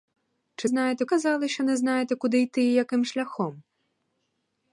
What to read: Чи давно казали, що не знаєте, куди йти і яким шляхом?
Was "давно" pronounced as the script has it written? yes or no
no